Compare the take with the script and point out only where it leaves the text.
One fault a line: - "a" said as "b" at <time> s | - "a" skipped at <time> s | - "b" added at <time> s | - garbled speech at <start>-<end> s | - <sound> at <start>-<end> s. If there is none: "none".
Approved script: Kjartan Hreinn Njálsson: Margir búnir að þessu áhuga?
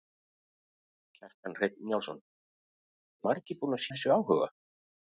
none